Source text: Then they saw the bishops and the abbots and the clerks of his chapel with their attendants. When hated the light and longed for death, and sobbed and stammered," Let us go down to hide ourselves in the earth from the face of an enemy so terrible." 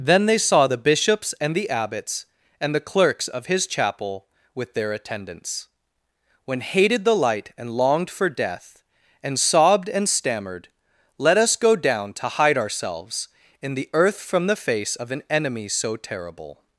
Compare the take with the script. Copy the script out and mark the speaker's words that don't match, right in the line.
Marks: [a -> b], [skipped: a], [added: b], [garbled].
Then they saw the bishops and the abbots and the clerks of his chapel with their attendants. When hated the light and longed for death, and sobbed and stammered," Let us go down to hide ourselves in the earth from the face of an enemy so terrible."